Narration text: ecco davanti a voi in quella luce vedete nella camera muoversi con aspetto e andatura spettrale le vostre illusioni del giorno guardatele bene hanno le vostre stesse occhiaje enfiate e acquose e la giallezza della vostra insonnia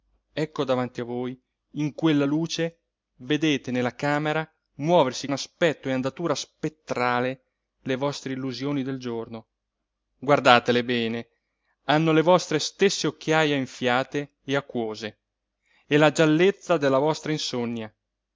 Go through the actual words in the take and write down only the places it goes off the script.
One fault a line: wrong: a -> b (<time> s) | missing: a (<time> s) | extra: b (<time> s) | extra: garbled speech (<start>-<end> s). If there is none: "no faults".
missing: con (5.3 s)